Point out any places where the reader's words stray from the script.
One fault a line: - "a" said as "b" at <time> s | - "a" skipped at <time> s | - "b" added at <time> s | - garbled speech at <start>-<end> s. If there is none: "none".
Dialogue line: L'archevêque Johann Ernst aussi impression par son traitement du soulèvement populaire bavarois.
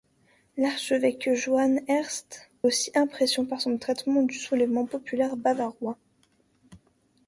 none